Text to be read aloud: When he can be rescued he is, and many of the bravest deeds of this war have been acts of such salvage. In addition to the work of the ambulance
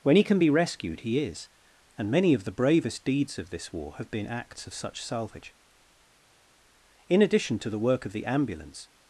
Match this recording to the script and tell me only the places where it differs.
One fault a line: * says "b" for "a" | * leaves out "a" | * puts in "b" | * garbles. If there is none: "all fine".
all fine